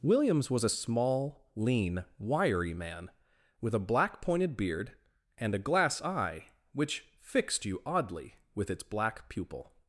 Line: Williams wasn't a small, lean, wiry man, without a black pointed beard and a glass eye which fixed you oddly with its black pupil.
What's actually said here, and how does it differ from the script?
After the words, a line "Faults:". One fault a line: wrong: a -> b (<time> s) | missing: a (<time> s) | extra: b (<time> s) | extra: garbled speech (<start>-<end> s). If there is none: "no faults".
Williams was a small, lean, wiry man, with a black pointed beard and a glass eye which fixed you oddly with its black pupil.
Faults:
wrong: wasn't -> was (0.5 s)
wrong: without -> with (3.6 s)